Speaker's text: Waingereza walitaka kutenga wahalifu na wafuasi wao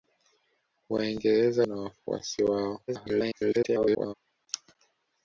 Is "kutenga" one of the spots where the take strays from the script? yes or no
yes